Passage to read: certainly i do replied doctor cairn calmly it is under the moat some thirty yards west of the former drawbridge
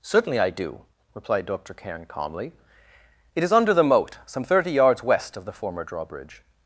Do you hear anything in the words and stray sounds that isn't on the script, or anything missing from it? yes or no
no